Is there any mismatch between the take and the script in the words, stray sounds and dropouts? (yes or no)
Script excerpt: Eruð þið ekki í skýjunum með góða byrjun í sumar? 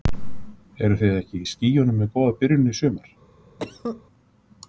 yes